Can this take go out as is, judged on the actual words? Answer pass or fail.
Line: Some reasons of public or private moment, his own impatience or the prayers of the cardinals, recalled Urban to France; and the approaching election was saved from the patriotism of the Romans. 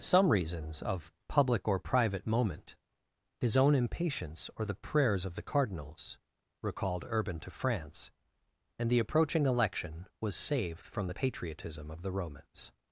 pass